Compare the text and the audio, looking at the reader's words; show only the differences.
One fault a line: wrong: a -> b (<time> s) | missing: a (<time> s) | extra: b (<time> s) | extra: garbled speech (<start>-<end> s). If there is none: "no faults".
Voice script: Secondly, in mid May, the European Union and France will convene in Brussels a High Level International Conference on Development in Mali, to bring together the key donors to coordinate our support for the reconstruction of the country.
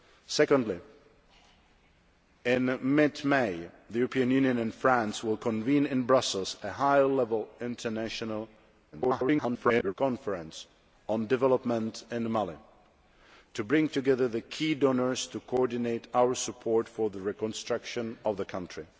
extra: garbled speech (8.9-9.9 s)